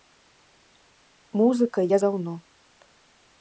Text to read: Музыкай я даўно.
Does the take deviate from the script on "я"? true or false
false